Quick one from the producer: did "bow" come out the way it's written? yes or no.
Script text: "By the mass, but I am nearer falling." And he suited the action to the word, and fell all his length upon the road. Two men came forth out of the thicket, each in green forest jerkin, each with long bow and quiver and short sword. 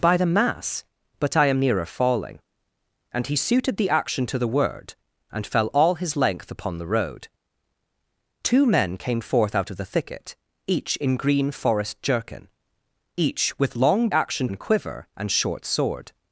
no